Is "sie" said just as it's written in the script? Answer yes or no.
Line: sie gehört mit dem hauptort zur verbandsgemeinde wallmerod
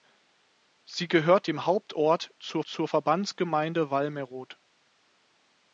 yes